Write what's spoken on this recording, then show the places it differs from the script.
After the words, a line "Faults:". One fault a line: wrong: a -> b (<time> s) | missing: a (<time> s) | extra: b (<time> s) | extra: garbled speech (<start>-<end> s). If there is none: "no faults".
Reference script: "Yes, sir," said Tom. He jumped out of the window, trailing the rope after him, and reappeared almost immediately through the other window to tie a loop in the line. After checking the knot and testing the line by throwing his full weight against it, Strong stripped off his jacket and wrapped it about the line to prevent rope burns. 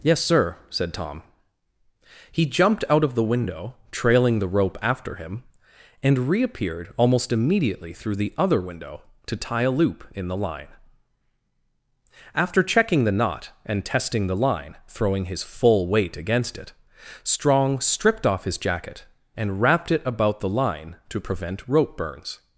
"Yes, sir," said Tom. He jumped out of the window, trailing the rope after him, and reappeared almost immediately through the other window to tie a loop in the line. After checking the knot and testing the line throwing his full weight against it, Strong stripped off his jacket and wrapped it about the line to prevent rope burns.
Faults:
missing: by (14.8 s)